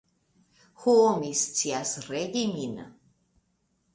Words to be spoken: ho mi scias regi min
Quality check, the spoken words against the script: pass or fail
pass